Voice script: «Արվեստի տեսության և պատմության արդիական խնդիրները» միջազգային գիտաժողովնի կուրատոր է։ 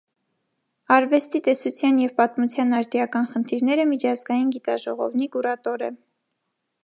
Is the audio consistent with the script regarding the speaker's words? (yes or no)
yes